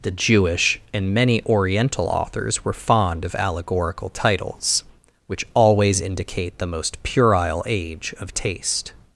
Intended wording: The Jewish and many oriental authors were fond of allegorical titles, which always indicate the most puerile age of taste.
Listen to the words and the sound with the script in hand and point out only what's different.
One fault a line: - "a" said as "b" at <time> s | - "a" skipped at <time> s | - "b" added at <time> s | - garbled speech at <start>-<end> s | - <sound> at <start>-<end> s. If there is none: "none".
none